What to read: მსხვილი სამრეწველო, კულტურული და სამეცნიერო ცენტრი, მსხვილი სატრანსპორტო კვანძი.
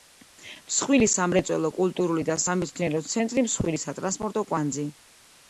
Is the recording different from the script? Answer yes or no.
no